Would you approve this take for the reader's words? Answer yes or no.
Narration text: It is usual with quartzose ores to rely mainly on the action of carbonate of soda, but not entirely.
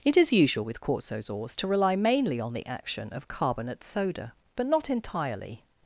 no